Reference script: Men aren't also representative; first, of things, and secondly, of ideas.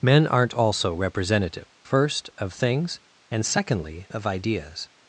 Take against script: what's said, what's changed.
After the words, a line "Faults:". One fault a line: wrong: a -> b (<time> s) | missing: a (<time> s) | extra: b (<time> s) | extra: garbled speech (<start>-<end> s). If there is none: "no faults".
Men aren't also representative; first, of things, and secondly, of ideas.
Faults:
no faults